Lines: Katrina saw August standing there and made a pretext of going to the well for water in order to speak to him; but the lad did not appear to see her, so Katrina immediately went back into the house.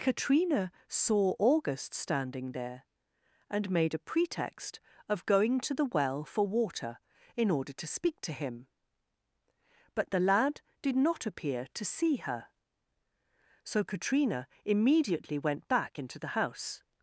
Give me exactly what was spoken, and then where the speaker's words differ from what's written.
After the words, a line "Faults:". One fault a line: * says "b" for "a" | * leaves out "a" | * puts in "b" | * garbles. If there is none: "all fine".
Katrina saw August standing there and made a pretext of going to the well for water in order to speak to him; but the lad did not appear to see her, so Katrina immediately went back into the house.
Faults:
all fine